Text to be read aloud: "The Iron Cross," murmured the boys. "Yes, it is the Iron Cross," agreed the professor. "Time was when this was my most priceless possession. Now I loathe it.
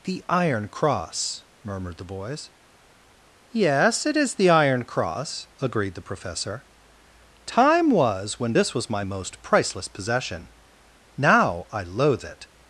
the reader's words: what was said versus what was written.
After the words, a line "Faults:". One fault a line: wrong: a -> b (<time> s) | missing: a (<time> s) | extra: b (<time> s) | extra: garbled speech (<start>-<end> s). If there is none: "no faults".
"The Iron Cross," murmured the boys. "Yes, it is the Iron Cross," agreed the professor. "Time was when this was my most priceless possession. Now I loathe it.
Faults:
no faults